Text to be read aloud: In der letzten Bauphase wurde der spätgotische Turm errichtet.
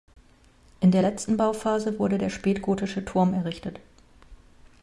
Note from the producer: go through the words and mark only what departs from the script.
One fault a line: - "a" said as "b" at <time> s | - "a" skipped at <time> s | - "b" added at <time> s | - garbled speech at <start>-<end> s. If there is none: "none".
none